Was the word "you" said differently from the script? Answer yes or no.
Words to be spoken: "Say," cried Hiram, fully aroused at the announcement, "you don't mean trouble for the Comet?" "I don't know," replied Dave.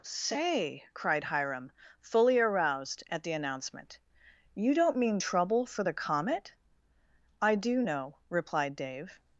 no